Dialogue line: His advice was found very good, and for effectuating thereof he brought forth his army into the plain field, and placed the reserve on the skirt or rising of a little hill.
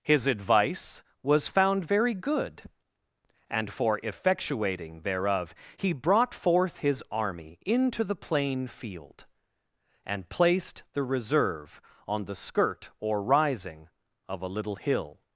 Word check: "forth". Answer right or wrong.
right